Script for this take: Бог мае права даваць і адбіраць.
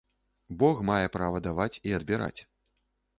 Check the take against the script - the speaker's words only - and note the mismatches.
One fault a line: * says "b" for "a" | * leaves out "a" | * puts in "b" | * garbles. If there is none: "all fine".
all fine